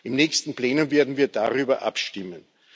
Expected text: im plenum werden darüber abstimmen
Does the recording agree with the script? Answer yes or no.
no